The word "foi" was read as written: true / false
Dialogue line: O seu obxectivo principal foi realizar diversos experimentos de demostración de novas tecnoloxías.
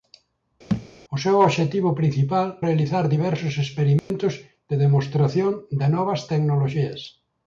false